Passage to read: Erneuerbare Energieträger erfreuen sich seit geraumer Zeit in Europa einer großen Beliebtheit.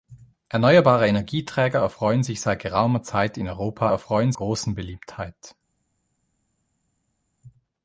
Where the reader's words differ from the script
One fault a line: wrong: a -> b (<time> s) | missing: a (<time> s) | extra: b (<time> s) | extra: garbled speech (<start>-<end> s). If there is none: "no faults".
wrong: einer -> erfreuen (3.9 s)